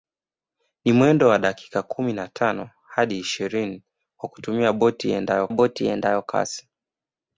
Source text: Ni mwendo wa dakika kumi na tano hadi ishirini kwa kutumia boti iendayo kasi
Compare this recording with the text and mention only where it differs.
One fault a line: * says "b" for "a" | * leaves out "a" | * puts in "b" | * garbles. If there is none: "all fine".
* puts in "boti iendayo"